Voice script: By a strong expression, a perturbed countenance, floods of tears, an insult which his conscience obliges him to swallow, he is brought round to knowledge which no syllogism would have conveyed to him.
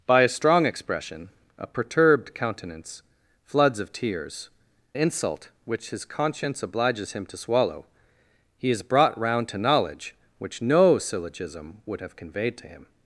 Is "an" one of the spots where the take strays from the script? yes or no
yes